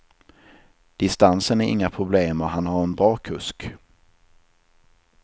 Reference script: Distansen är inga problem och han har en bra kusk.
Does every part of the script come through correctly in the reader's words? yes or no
yes